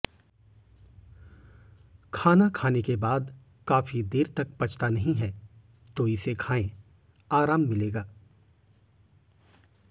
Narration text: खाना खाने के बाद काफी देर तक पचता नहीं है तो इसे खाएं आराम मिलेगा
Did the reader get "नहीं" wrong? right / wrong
right